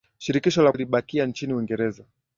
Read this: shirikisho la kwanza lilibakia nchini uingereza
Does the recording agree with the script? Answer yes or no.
no